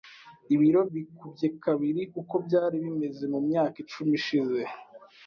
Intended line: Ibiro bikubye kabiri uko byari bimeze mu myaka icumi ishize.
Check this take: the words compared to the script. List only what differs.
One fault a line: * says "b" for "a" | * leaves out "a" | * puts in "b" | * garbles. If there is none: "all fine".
all fine